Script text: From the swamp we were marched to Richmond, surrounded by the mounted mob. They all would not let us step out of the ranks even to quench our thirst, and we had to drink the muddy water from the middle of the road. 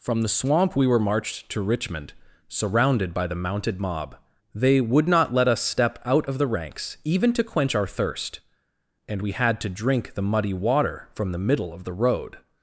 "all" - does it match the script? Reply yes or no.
no